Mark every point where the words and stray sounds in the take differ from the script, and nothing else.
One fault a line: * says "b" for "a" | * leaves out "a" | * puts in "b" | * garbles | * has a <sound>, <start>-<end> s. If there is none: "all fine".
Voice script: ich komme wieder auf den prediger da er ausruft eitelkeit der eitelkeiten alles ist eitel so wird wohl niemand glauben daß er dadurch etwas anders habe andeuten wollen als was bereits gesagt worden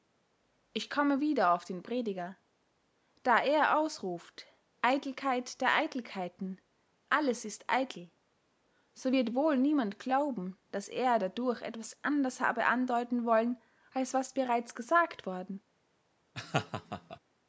* has a laugh, 16.3-17.2 s